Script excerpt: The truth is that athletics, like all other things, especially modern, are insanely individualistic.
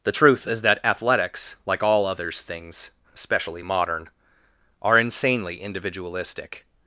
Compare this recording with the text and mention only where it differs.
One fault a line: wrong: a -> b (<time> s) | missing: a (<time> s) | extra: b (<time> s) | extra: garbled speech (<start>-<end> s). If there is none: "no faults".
wrong: other -> others (2.0 s)